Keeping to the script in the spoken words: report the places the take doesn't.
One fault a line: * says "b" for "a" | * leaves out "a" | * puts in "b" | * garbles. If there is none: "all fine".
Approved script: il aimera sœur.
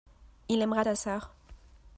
* puts in "ta"